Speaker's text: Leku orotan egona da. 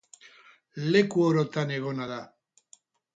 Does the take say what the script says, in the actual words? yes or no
yes